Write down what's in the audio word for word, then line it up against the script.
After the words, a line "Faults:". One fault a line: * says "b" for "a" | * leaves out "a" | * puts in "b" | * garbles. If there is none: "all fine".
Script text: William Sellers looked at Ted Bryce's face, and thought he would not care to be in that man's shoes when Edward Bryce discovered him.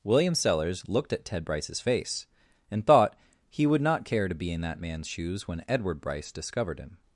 William Sellers looked at Ted Bryce's face, and thought he would not care to be in that man's shoes when Edward Bryce discovered him.
Faults:
all fine